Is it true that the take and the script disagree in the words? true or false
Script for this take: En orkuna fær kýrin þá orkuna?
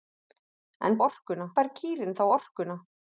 false